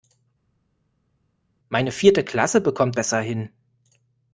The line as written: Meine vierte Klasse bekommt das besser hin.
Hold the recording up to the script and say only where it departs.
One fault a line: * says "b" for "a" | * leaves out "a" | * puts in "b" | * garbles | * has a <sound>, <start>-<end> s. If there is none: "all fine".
* leaves out "das"